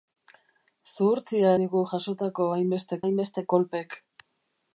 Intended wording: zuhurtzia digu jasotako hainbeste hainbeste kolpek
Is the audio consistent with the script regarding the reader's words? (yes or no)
yes